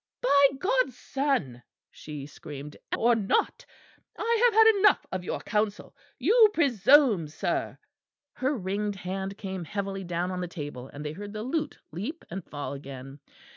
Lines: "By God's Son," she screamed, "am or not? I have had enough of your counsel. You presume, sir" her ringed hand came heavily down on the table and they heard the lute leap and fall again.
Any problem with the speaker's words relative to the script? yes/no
no